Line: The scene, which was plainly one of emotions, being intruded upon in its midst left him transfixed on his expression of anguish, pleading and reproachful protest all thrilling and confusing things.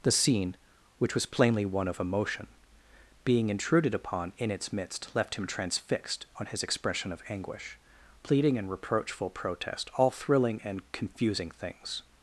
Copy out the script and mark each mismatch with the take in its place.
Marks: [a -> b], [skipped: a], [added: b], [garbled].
The scene, which was plainly one of [emotions, -> emotion] being intruded upon in its midst left him transfixed on his expression of anguish, pleading and reproachful protest all thrilling and confusing things.